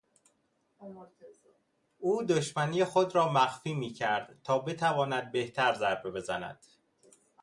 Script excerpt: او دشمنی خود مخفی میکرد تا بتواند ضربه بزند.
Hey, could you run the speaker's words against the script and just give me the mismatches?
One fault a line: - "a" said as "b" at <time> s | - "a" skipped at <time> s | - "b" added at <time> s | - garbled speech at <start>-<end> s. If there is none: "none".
- "را" added at 3.2 s
- "بهتر" added at 5.3 s